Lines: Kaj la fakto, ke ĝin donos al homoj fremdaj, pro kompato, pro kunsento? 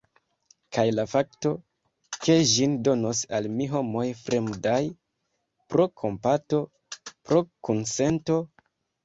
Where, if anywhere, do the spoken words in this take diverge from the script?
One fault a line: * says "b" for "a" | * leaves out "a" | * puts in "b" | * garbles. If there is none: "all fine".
* puts in "mi"